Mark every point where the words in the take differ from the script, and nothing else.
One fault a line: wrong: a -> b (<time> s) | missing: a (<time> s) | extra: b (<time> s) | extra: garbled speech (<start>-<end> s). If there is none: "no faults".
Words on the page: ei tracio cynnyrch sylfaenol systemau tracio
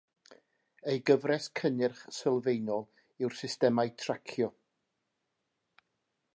wrong: tracio -> gyfres (1.1 s)
extra: yw'r (3.2 s)